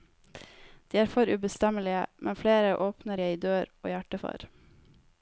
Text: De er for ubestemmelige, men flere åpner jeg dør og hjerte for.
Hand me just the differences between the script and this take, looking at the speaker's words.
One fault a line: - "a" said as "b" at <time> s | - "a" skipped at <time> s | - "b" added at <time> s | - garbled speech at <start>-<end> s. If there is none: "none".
none